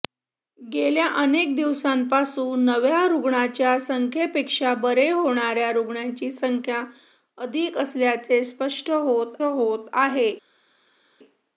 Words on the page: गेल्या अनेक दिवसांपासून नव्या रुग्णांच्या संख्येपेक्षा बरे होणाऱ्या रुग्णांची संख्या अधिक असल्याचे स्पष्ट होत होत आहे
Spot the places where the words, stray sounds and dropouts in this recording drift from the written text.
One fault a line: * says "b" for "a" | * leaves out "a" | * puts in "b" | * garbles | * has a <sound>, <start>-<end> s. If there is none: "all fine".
all fine